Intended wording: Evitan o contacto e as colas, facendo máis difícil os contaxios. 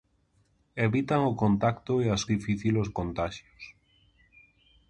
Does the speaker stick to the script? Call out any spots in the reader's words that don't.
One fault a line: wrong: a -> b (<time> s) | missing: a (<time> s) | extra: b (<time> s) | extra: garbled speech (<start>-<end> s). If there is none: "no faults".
missing: colas facendo máis (2.2 s)